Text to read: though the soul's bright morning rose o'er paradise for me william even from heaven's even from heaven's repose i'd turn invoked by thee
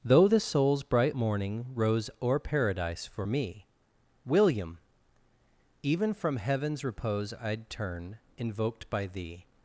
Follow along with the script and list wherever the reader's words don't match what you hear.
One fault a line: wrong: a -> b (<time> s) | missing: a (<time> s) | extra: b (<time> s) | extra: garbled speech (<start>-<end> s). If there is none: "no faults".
missing: even from heaven's (6.8 s)